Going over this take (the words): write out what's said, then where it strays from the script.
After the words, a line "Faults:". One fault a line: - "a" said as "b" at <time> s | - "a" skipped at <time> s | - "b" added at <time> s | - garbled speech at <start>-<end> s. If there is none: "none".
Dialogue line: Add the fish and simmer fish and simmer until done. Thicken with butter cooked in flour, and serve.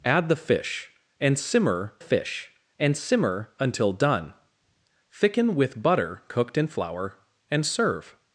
Add the fish and simmer fish and simmer until done. Thicken with butter cooked in flour, and serve.
Faults:
none